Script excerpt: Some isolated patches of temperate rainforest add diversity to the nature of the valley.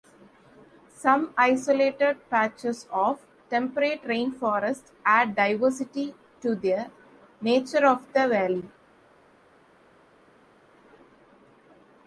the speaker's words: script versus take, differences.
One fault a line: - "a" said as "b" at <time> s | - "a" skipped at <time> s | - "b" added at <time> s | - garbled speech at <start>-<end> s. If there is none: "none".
none